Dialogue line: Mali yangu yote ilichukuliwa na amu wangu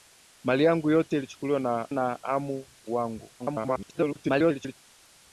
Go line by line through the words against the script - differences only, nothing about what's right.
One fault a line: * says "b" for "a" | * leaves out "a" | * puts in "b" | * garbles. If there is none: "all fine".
* puts in "na"
* garbles